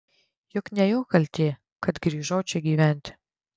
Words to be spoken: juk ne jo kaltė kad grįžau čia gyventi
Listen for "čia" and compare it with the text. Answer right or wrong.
right